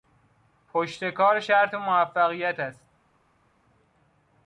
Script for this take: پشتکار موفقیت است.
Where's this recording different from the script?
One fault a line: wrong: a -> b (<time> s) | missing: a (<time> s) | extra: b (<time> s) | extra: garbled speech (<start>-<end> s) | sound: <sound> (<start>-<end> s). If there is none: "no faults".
extra: شرط (1.4 s)